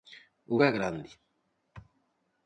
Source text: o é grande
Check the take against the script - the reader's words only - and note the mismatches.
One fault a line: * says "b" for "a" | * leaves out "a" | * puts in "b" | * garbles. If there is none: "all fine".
all fine